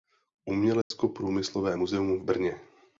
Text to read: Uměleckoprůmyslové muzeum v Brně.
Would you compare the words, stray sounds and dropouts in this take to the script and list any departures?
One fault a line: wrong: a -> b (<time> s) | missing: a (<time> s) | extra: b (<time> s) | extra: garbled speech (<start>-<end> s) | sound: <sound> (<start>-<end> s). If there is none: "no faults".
sound: dropout (0.8-0.9 s)